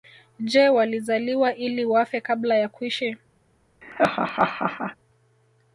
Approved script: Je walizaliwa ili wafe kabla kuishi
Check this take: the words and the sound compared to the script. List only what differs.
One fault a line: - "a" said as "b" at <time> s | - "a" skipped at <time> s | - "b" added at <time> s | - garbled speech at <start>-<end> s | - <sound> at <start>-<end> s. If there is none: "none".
- "ya" added at 2.5 s
- laugh at 3.8-5.0 s